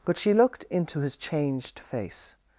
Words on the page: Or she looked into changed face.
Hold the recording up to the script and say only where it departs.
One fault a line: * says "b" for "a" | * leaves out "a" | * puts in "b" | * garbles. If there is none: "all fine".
* says "But" for "Or"
* puts in "his"